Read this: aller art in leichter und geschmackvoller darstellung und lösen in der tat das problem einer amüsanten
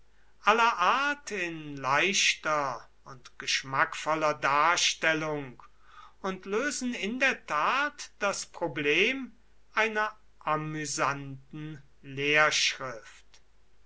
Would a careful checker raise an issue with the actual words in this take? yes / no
no